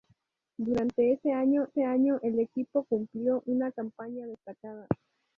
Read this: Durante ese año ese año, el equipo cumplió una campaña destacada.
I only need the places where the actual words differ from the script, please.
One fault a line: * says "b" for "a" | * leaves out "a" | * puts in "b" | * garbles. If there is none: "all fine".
all fine